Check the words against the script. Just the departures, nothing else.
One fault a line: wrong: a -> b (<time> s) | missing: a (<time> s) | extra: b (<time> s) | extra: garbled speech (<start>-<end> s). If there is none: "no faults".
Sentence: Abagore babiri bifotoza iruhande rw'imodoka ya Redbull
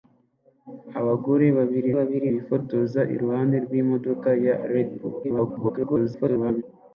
extra: babiri (2.0 s)
extra: garbled speech (5.2-6.6 s)